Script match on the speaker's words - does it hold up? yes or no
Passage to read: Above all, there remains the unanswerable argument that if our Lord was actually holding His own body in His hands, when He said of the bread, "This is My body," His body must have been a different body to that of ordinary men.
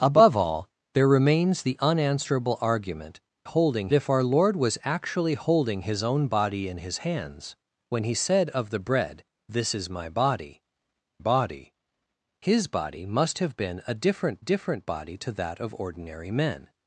no